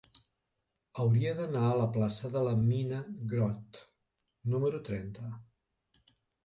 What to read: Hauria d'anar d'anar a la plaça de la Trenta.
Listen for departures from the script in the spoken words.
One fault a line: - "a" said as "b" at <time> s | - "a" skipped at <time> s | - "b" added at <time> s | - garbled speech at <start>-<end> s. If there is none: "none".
- "d'anar" skipped at 1.6 s
- "Mina Grott número" added at 2.6 s